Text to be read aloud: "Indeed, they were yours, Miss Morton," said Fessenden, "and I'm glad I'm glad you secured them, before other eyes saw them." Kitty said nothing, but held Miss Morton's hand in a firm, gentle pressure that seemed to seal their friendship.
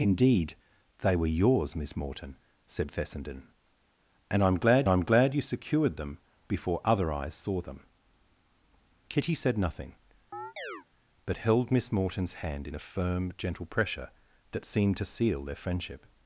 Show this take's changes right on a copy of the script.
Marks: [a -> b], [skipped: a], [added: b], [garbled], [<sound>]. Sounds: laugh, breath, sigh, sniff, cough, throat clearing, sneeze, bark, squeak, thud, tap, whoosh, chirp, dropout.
"Indeed, they were yours, Miss Morton," said Fessenden, "and I'm glad I'm glad you secured them, before other eyes saw them." Kitty said nothing, [chirp] but held Miss Morton's hand in a firm, gentle pressure that seemed to seal their friendship.